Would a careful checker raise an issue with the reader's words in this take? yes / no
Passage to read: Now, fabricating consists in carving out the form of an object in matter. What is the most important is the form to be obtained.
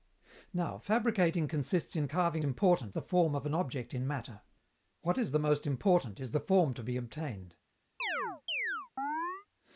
yes